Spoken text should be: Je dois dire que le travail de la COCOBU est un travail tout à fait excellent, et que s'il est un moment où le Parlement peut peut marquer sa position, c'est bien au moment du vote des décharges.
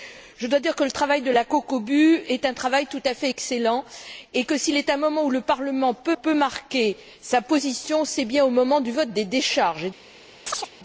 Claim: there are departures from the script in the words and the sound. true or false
true